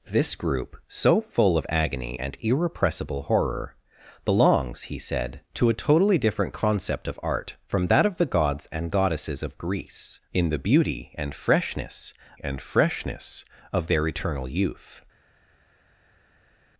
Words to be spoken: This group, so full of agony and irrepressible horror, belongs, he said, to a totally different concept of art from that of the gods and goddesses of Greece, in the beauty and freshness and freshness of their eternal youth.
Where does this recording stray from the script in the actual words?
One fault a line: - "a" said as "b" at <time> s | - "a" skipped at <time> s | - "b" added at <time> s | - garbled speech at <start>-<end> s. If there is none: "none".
none